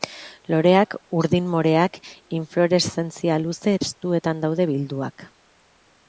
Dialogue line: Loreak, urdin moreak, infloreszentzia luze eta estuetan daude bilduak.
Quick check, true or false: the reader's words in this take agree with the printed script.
false